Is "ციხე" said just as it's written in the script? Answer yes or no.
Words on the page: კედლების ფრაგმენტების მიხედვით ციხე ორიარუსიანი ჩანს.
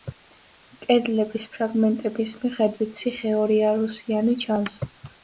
yes